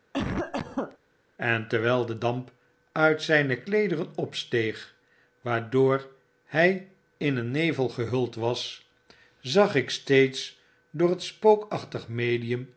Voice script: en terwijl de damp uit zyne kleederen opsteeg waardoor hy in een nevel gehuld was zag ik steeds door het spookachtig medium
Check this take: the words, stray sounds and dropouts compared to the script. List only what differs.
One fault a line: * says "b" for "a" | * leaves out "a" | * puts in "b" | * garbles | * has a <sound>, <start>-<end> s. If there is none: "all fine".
* has a cough, 0.1-1.0 s